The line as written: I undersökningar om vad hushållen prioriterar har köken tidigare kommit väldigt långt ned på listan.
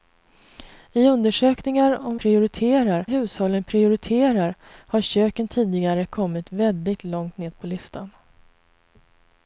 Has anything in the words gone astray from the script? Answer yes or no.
yes